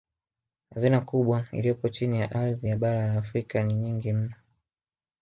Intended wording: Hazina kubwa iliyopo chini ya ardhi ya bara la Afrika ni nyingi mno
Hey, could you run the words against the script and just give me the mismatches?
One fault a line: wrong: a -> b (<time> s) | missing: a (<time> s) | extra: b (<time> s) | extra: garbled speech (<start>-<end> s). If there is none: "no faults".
no faults